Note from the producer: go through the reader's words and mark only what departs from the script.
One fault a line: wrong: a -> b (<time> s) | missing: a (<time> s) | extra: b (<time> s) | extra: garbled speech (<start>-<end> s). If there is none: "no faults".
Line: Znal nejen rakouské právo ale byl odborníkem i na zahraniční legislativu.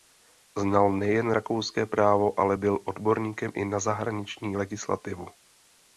no faults